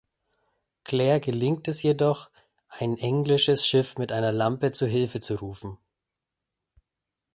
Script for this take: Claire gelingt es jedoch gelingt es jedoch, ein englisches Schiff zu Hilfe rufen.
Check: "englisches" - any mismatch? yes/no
yes